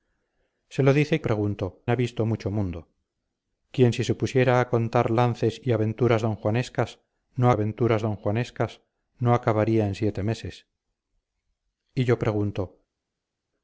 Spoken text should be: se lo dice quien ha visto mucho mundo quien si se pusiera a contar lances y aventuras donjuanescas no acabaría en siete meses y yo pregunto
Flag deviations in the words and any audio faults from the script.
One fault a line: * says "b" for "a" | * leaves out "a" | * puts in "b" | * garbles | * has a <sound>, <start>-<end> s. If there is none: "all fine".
* says "pregunto" for "quien"
* puts in "aventuras donjuanescas no"